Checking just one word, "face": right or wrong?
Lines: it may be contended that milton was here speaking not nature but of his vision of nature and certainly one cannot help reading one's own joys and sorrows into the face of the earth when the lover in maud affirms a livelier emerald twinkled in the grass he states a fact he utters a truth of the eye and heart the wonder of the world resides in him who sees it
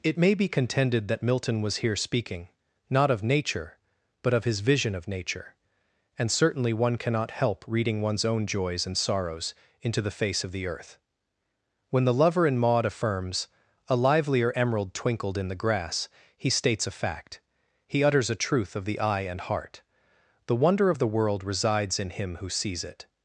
right